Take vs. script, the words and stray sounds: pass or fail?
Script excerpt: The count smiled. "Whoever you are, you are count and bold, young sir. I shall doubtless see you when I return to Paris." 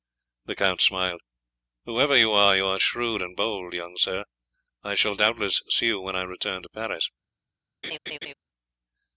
fail